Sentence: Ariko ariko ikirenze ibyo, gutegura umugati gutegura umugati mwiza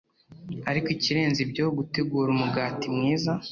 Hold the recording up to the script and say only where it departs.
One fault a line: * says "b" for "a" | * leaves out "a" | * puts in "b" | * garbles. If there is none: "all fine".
* leaves out "ariko"
* leaves out "gutegura umugati"